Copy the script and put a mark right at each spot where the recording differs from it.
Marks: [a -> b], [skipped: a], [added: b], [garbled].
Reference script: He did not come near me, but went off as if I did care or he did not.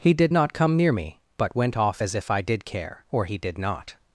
He did not come near me, but went off as if I did care or he did not.